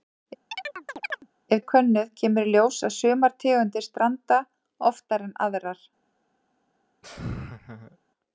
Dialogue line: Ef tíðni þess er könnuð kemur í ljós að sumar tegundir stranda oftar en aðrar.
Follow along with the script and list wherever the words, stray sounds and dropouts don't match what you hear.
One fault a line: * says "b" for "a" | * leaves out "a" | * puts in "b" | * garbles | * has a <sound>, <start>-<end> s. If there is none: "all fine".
* has a chirp, 0.5-1.3 s
* leaves out "tíðni þess"
* has a laugh, 7.0-8.0 s